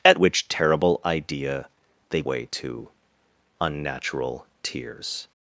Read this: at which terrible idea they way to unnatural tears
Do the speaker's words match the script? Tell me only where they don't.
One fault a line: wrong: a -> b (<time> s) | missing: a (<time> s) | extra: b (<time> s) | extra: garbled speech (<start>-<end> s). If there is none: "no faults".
no faults